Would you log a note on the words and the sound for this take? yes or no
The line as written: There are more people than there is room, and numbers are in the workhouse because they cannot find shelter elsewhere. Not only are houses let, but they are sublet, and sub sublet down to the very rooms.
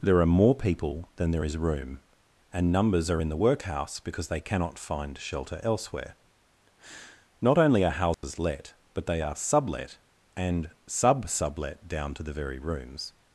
yes